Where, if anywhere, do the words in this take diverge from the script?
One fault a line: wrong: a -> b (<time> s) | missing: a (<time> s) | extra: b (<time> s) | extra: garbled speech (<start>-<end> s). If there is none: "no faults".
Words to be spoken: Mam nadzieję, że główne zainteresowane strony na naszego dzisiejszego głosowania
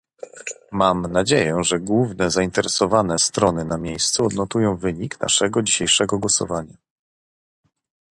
extra: miejscu odnotują wynik (3.8 s)